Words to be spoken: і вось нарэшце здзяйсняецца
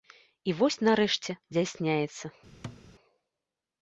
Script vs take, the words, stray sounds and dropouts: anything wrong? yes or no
yes